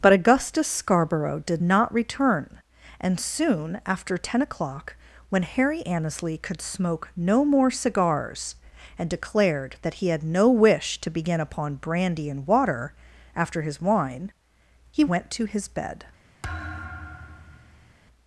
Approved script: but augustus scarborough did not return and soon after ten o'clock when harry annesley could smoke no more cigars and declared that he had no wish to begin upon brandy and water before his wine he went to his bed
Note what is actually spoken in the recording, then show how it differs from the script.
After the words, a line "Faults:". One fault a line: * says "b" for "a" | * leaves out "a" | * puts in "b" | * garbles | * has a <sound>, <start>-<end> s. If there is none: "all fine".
but augustus scarborough did not return and soon after ten o'clock when harry annesley could smoke no more cigars and declared that he had no wish to begin upon brandy and water after his wine he went to his bed
Faults:
* says "after" for "before"
* has a thud, 16.4-17.9 s